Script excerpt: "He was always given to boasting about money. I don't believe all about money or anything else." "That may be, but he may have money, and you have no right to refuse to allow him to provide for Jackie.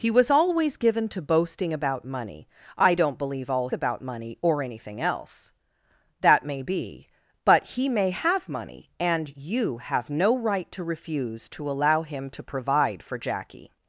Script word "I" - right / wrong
right